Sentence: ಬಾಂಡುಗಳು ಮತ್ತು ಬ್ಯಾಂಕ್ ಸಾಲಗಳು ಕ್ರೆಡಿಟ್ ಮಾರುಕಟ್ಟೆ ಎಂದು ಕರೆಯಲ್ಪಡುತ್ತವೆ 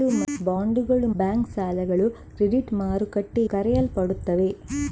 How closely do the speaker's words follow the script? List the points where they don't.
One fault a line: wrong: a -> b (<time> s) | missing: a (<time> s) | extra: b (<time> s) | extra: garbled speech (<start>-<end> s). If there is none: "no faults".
missing: ಮತ್ತು (1.1 s)
missing: ಎಂದು (3.5 s)